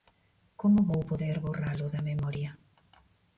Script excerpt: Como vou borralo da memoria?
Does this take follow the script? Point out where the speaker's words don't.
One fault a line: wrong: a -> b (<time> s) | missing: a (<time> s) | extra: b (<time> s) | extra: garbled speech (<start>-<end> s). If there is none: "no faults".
extra: poder (1.1 s)